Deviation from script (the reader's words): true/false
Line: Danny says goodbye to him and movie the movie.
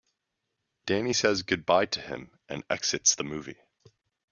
true